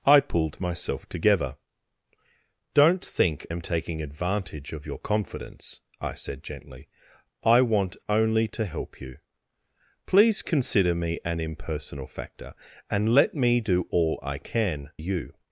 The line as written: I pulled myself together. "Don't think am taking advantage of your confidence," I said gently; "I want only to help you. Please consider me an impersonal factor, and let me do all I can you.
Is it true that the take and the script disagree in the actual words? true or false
false